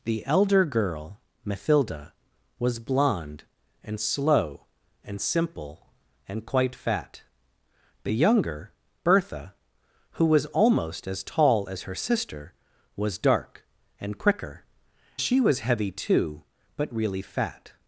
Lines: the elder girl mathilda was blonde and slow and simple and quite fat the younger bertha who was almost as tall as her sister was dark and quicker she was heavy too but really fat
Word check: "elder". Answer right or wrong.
right